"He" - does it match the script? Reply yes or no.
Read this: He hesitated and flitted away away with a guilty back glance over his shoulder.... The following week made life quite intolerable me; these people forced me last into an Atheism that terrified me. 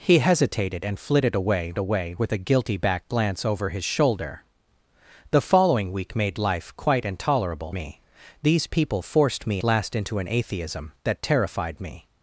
yes